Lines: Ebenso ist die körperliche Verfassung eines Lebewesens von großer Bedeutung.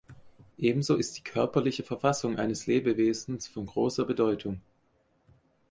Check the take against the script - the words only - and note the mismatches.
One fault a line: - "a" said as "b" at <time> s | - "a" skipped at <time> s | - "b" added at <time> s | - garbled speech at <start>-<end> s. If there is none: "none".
none